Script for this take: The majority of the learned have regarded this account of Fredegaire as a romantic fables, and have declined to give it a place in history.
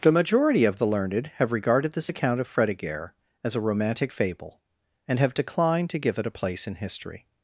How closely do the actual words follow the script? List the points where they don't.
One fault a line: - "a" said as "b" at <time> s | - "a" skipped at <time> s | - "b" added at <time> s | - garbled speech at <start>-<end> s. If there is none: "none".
- "fables" said as "fable" at 4.1 s